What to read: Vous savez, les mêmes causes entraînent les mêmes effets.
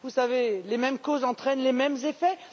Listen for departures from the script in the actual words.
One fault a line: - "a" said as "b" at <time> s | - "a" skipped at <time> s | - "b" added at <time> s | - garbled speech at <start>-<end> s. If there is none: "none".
none